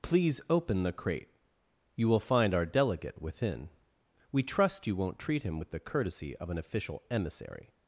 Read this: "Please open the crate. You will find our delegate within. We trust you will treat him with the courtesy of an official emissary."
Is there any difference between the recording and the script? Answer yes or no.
yes